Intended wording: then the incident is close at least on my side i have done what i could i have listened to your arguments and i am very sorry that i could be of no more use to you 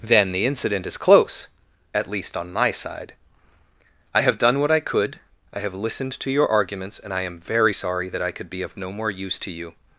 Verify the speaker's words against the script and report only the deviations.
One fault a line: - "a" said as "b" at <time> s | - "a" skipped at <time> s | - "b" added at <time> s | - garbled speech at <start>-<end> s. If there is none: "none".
none